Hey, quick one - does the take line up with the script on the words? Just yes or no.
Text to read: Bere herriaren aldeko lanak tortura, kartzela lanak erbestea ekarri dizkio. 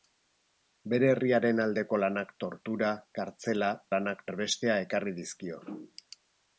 yes